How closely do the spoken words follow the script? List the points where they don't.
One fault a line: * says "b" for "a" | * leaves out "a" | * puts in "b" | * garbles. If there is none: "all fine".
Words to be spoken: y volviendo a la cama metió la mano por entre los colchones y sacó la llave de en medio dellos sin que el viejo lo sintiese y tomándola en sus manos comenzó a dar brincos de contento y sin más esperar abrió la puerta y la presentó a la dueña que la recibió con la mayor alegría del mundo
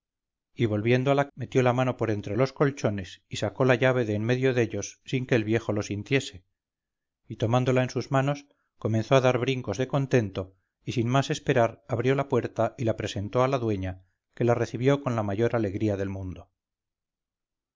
* leaves out "cama"